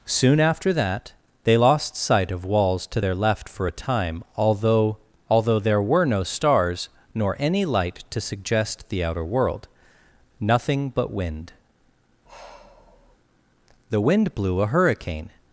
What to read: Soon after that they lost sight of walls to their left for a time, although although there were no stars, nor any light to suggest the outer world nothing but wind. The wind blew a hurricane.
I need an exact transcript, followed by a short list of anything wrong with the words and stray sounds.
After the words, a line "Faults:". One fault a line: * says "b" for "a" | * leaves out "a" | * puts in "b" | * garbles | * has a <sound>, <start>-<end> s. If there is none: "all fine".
Soon after that they lost sight of walls to their left for a time, although although there were no stars, nor any light to suggest the outer world nothing but wind. The wind blew a hurricane.
Faults:
* has a sigh, 12.3-13.2 s